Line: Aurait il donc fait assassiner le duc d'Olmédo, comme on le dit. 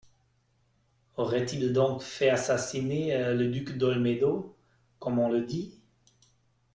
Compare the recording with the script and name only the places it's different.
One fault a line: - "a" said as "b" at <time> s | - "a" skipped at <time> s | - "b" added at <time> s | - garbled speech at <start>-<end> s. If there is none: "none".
none